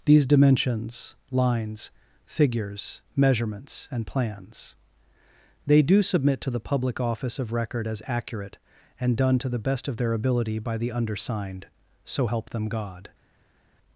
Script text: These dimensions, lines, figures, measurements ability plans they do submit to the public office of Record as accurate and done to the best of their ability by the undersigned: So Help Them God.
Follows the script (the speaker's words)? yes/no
no